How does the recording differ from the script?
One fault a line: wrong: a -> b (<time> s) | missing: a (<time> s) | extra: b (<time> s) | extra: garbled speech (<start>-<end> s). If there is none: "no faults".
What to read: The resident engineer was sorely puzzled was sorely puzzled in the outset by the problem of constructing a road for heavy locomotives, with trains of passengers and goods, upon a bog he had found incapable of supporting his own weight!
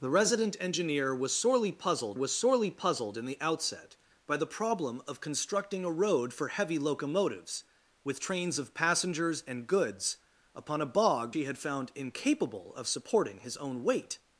no faults